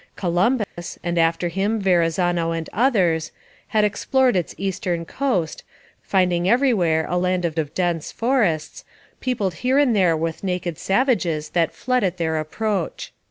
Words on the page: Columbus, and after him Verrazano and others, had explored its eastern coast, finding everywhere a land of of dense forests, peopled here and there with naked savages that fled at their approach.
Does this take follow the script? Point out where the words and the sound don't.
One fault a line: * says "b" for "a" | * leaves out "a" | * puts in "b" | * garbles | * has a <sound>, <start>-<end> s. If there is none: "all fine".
* has a dropout, 0.6-0.8 s